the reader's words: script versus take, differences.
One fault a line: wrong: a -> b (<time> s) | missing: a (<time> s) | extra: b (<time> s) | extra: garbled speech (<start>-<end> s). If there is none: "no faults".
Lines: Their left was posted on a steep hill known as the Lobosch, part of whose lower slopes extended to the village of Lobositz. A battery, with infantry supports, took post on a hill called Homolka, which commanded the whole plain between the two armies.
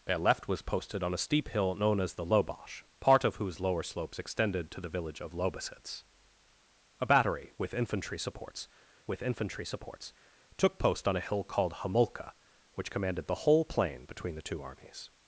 extra: with infantry supports (9.1 s)